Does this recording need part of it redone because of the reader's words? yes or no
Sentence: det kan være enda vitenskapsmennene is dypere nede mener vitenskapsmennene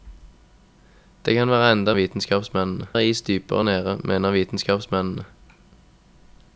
no